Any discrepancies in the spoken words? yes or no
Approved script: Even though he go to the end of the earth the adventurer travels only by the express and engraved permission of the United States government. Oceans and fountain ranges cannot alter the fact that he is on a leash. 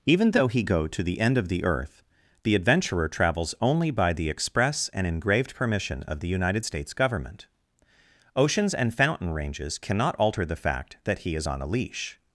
no